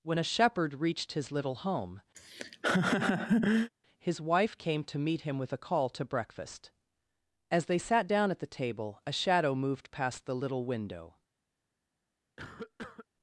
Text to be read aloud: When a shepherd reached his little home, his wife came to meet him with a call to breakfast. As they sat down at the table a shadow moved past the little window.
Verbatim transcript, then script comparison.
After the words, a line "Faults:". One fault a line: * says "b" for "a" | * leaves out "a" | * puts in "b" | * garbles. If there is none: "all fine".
When a shepherd reached his little home, his wife came to meet him with a call to breakfast. As they sat down at the table a shadow moved past the little window.
Faults:
all fine